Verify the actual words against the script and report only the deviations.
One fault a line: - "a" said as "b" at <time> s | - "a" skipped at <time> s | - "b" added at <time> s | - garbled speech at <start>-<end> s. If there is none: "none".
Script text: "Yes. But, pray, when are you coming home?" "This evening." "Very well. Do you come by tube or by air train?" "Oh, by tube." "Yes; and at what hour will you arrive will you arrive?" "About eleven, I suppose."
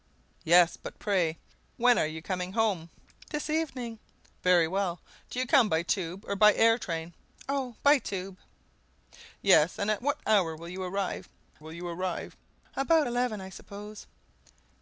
none